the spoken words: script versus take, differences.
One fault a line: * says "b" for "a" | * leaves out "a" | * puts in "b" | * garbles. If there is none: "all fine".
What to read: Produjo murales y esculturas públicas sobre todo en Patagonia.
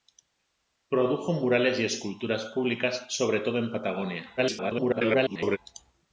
* garbles